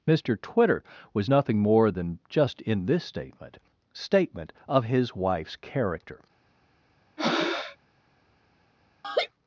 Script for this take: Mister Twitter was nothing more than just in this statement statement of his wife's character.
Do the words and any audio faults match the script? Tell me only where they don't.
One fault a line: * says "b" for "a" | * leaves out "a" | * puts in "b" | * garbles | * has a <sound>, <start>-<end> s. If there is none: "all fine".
* has a breath, 7.2-7.8 s
* has a laugh, 9.0-9.3 s